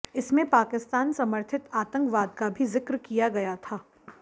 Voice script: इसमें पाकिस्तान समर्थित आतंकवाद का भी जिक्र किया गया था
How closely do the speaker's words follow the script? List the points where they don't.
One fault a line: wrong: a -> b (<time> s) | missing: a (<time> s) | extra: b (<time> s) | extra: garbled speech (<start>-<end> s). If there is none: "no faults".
no faults